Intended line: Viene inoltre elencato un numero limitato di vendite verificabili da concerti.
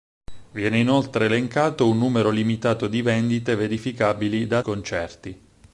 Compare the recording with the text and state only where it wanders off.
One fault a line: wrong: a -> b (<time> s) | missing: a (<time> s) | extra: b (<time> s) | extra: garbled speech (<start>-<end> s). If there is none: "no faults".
no faults